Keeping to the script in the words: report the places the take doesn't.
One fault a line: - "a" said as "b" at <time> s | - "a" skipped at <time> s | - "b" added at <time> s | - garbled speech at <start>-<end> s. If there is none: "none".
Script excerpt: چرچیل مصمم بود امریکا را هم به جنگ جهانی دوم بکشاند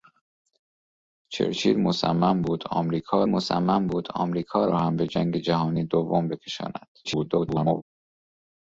- "مصمم بود امریکا" added at 3.3 s
- garbled speech at 7.0-7.8 s